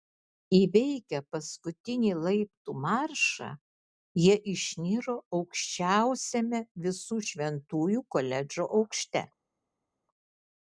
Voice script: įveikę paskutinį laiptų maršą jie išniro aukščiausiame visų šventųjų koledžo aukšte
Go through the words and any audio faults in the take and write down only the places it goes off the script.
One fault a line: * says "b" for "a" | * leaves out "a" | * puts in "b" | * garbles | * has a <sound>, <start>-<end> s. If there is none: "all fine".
all fine